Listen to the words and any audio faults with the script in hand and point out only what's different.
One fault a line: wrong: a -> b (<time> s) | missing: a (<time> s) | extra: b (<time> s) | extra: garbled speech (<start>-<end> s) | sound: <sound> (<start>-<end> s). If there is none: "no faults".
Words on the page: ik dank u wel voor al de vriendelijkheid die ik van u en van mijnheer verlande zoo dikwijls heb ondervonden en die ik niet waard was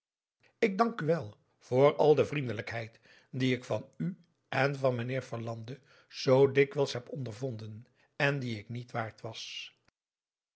no faults